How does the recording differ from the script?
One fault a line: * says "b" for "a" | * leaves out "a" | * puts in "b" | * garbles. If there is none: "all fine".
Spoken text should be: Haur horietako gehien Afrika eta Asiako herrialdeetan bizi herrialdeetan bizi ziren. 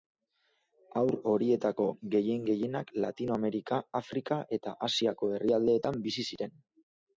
* puts in "gehienak Latinoamerika"
* leaves out "herrialdeetan bizi"